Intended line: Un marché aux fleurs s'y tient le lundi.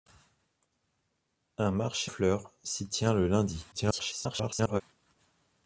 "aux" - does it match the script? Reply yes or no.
no